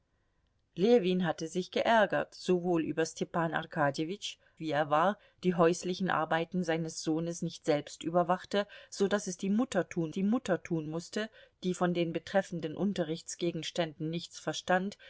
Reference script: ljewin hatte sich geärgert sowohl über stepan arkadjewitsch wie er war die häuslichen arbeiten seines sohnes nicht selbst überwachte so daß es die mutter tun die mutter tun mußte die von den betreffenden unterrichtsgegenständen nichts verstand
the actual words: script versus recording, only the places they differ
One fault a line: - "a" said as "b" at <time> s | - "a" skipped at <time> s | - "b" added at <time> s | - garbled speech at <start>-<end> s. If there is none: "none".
none